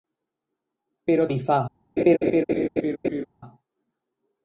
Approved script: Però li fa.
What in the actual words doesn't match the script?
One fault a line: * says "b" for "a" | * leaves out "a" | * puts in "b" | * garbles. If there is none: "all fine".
all fine